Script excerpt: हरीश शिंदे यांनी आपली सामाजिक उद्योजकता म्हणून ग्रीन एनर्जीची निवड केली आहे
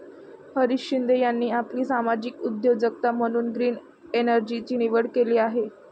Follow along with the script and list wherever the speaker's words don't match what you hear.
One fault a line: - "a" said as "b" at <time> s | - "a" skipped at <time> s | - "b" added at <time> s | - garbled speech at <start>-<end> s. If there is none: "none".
none